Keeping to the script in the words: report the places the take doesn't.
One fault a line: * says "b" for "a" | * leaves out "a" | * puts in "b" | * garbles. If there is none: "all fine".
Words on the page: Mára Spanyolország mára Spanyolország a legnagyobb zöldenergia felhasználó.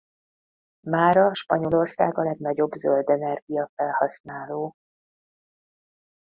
* leaves out "mára Spanyolország"